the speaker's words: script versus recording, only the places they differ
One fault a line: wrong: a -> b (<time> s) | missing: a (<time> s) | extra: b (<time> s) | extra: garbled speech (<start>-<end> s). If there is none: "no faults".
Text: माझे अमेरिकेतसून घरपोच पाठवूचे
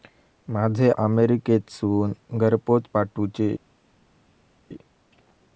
no faults